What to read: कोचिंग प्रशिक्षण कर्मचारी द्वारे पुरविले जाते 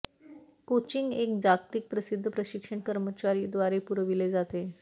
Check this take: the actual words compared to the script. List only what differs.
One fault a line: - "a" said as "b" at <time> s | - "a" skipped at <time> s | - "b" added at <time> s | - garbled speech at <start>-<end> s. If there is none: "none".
- "एक जागतिक प्रसिद्ध" added at 1.1 s